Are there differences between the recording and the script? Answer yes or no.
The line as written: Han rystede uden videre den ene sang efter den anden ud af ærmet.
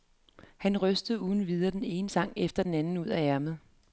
no